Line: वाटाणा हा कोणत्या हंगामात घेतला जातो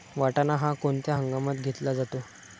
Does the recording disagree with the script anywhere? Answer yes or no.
no